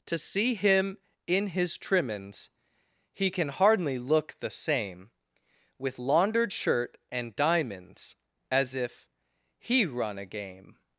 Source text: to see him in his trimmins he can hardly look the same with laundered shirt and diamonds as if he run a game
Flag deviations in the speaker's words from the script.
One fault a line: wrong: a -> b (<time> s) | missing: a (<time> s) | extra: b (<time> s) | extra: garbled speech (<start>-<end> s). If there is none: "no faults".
no faults